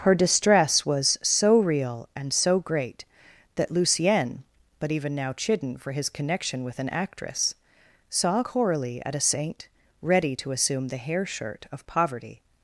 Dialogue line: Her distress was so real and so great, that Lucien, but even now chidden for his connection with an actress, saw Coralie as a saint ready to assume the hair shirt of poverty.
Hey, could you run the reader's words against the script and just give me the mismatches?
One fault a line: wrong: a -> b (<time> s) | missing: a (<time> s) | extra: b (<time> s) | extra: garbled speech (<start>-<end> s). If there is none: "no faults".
wrong: as -> at (9.1 s)